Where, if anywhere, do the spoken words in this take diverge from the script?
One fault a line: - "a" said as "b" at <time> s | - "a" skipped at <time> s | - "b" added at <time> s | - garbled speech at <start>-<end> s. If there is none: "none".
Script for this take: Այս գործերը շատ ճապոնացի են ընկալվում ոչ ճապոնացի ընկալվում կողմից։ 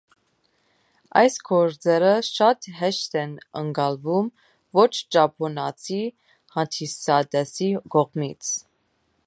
- "ճապոնացի" said as "հեշտ" at 2.8 s
- "ընկալվում" said as "հանդիսատեսի" at 6.6 s